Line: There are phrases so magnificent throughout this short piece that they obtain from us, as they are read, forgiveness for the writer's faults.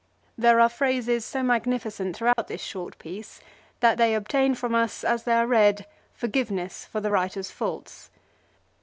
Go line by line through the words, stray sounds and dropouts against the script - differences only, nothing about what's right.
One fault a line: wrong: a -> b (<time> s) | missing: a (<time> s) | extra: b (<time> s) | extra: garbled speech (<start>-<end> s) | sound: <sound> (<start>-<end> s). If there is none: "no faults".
sound: dropout (2.3-2.4 s)